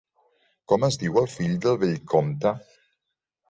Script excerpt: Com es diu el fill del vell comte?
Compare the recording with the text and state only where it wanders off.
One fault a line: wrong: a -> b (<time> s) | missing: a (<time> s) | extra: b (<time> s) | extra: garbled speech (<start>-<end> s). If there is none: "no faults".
no faults